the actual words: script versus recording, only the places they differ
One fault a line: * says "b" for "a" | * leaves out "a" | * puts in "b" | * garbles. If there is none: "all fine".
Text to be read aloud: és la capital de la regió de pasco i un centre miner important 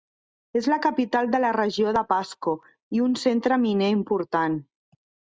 all fine